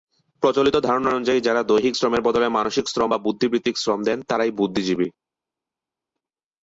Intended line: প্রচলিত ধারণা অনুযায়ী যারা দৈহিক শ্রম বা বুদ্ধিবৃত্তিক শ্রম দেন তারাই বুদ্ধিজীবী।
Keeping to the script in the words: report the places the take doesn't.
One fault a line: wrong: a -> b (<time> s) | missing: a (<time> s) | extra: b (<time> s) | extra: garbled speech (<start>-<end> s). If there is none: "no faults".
extra: শ্রমের বদলে মানসিক (1.9 s)